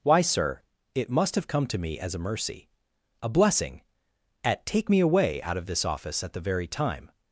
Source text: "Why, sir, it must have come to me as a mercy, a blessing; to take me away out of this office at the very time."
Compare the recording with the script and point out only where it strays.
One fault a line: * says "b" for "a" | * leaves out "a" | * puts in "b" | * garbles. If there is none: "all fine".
* says "at" for "to"